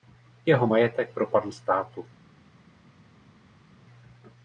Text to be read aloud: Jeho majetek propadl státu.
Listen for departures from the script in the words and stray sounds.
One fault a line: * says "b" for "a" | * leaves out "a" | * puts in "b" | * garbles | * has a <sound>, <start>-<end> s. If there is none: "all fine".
all fine